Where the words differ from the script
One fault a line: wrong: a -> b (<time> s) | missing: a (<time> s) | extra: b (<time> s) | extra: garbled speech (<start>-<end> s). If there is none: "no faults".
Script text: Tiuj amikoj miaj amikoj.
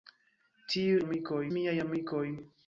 no faults